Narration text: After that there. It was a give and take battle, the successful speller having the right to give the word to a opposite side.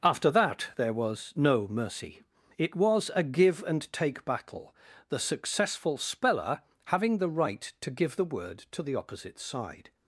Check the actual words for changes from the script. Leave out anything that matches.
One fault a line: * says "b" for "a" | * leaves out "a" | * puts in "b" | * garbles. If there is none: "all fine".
* puts in "was no mercy"
* says "the" for "a"